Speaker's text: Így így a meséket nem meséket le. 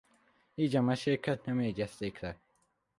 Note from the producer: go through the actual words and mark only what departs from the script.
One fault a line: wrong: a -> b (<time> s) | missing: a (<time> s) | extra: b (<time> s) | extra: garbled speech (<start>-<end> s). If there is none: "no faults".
missing: így (0.8 s)
wrong: meséket -> jegyezték (1.6 s)